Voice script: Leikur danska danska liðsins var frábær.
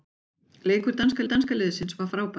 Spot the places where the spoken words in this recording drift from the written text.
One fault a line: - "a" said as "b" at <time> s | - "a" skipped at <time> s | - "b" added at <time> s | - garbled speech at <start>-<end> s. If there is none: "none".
none